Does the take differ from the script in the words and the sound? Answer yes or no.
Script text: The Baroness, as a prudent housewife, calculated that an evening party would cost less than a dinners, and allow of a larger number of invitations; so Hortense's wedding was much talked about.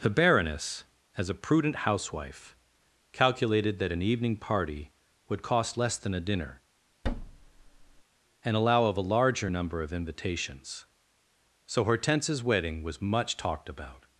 yes